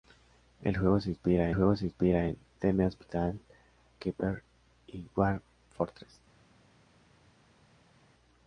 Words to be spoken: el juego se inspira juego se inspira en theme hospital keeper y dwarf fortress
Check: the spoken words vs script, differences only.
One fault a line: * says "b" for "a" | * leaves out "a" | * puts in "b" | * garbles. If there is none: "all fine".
all fine